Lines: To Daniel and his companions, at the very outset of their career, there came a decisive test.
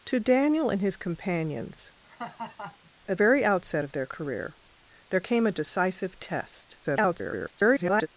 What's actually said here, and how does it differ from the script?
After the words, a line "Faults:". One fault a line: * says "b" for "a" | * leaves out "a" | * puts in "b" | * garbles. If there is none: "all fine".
To Daniel and his companions, at very outset of their career, there came a decisive test. [garbled]
Faults:
* leaves out "the"
* garbles